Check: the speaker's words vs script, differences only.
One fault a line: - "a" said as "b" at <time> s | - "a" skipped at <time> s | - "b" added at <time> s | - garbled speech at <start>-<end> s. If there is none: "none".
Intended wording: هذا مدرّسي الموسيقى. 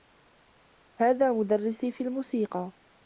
- "في" added at 1.9 s